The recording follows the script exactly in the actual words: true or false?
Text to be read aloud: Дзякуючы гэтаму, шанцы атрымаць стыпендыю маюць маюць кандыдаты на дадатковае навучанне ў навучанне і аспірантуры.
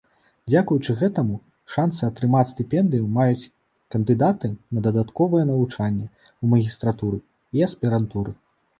false